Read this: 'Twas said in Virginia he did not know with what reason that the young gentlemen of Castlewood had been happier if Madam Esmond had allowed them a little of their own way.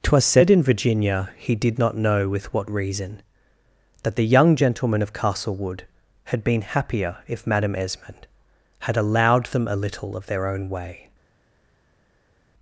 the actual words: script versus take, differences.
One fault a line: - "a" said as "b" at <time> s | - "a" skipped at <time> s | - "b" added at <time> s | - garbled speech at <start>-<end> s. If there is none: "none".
none